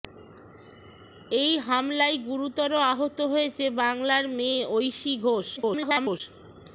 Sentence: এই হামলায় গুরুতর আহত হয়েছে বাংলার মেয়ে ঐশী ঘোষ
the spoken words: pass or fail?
fail